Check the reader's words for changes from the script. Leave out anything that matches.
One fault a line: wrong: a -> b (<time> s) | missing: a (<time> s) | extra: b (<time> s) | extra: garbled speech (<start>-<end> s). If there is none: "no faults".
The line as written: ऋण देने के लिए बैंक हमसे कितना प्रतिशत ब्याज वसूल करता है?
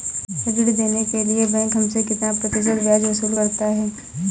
no faults